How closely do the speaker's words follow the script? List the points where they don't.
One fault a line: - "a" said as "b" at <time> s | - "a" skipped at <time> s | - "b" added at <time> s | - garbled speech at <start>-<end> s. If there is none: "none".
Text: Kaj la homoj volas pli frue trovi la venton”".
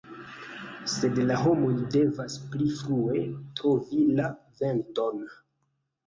- "Kaj" said as "Sed" at 0.9 s
- "volas" said as "devas" at 1.9 s